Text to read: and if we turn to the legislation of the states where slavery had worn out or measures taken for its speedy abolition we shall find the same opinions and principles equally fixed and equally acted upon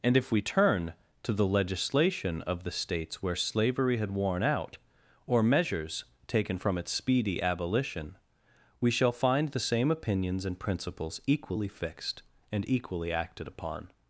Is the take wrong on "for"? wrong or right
wrong